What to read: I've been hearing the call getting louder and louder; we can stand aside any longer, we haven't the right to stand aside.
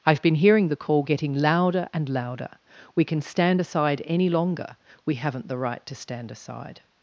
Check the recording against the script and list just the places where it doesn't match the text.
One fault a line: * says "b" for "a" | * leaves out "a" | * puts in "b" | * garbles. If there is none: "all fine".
all fine